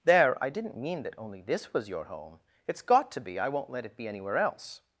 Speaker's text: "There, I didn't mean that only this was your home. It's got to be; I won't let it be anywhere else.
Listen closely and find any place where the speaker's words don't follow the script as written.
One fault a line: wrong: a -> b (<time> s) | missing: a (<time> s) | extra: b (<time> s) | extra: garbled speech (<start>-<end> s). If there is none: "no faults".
no faults